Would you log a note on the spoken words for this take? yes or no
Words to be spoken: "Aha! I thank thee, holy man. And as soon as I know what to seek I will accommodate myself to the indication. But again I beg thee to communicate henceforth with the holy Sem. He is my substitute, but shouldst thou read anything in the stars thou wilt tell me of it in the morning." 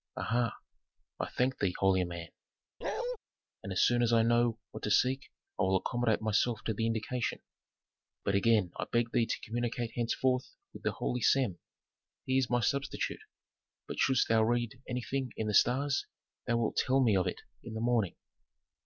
no